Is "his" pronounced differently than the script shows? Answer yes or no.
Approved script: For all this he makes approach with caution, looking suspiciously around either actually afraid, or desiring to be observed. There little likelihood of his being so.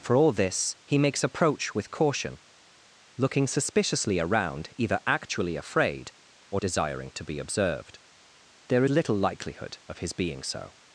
no